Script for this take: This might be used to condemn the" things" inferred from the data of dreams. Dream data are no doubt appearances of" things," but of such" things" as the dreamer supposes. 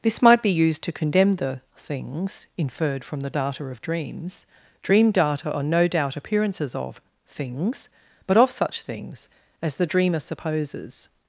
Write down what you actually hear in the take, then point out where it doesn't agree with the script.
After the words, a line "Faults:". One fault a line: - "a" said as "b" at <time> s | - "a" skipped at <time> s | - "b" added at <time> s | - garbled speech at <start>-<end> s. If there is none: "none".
This might be used to condemn the" things" inferred from the data of dreams. Dream data are no doubt appearances of" things," but of such" things" as the dreamer supposes.
Faults:
none